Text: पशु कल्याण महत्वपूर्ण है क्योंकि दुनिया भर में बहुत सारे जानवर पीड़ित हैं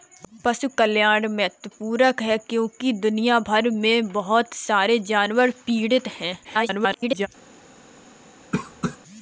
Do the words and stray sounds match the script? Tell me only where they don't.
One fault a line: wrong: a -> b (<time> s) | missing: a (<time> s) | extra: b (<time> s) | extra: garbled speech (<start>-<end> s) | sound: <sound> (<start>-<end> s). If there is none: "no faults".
extra: garbled speech (6.4-7.3 s)
sound: cough (8.5-9.0 s)